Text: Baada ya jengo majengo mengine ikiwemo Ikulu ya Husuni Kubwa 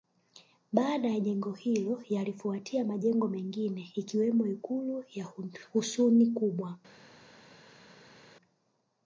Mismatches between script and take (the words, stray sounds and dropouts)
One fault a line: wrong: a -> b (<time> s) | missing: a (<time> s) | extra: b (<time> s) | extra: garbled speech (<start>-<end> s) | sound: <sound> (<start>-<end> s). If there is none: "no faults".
extra: hilo yalifuatia (1.5 s)